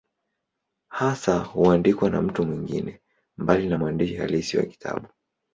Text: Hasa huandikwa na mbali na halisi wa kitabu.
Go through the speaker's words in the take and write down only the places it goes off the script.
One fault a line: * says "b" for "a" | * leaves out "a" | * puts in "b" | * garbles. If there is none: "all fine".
* puts in "mtu mwingine"
* puts in "mwandishi"